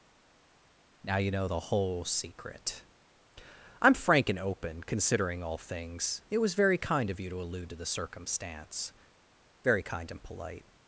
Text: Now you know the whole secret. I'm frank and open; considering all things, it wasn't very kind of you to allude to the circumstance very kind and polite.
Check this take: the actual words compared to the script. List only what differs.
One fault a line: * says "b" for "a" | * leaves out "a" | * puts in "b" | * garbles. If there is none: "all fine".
* says "was" for "wasn't"